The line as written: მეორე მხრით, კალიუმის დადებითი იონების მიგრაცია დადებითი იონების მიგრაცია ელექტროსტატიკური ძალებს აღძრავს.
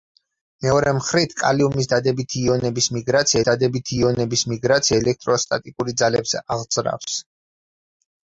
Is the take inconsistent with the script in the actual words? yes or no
no